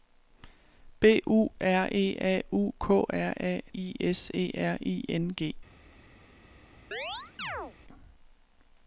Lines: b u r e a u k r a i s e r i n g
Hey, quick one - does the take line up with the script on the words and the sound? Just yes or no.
no